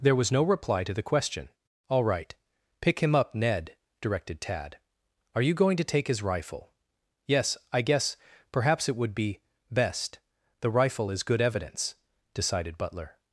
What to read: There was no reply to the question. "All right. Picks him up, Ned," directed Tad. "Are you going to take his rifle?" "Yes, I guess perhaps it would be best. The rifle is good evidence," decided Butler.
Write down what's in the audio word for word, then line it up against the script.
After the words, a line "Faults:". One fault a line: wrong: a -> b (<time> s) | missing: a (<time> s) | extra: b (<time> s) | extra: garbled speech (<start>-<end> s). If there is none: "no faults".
There was no reply to the question. "All right. Pick him up, Ned," directed Tad. "Are you going to take his rifle?" "Yes, I guess perhaps it would be best. The rifle is good evidence," decided Butler.
Faults:
wrong: Picks -> Pick (2.8 s)